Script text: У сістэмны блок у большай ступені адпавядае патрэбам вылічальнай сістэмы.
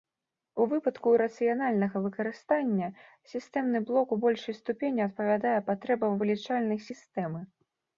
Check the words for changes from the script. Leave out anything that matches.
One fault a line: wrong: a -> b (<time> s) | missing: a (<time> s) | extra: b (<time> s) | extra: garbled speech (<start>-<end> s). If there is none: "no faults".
extra: выпадку рацыянальнага выкарыстання (0.7 s)